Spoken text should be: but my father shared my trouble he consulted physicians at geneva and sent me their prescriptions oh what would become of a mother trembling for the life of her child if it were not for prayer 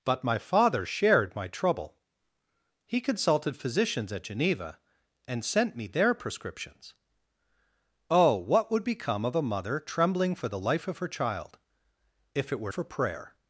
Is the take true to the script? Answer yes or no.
no